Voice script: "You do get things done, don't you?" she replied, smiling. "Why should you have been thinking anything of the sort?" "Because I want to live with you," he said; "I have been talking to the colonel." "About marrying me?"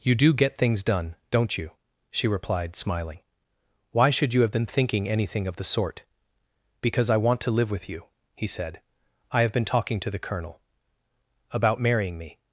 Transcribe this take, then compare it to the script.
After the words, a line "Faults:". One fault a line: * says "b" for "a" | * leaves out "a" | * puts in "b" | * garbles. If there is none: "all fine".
"You do get things done, don't you?" she replied, smiling. "Why should you have been thinking anything of the sort?" "Because I want to live with you," he said; "I have been talking to the colonel." "About marrying me?"
Faults:
all fine